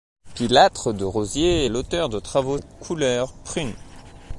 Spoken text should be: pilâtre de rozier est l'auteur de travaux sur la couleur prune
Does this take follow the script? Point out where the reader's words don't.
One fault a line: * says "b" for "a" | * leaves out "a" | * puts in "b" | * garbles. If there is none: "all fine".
* leaves out "est"
* leaves out "sur"